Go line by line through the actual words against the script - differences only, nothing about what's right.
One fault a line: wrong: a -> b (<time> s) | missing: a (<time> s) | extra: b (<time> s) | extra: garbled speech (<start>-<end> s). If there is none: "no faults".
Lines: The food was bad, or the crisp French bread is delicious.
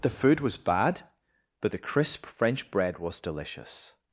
wrong: or -> but (1.6 s)
wrong: is -> was (3.0 s)